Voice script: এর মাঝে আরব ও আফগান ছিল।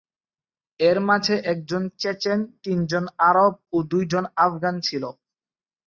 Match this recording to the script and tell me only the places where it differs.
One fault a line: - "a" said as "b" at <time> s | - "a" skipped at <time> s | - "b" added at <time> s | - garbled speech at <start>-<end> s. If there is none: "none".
- "একজন চেচেন তিনজন" added at 1.4 s
- "দুইজন" added at 3.9 s